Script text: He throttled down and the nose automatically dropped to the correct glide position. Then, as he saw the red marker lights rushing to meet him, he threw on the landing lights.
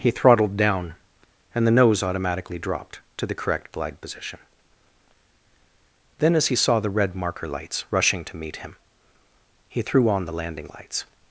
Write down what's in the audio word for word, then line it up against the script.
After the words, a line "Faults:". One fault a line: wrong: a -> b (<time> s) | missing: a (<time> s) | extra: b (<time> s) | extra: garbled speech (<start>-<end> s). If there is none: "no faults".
He throttled down and the nose automatically dropped to the correct glide position. Then, as he saw the red marker lights rushing to meet him, he threw on the landing lights.
Faults:
no faults